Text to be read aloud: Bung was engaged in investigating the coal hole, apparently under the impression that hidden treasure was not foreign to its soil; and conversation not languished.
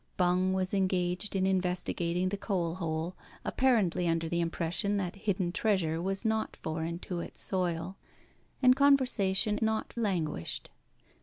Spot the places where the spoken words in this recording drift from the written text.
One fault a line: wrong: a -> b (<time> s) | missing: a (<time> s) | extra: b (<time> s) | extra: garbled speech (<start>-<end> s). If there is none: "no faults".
no faults